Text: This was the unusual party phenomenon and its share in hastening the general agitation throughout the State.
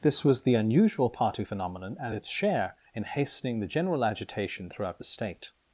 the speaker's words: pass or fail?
pass